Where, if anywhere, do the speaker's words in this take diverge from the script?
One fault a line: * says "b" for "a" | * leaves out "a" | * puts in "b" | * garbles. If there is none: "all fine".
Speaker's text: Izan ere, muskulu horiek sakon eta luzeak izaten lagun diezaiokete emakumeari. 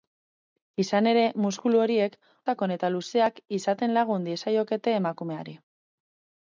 all fine